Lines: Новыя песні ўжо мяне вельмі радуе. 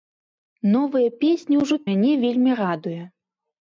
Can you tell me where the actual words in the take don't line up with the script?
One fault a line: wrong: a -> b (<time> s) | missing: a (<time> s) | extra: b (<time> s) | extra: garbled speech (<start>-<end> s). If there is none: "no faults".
no faults